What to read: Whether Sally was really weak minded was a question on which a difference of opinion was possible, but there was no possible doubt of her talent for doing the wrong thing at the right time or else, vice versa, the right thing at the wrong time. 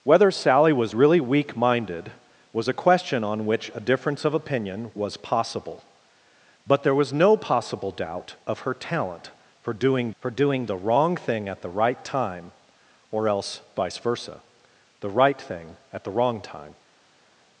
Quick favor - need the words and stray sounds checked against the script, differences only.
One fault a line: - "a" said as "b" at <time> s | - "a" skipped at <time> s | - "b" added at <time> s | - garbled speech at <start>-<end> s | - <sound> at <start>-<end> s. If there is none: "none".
- "for doing" added at 10.2 s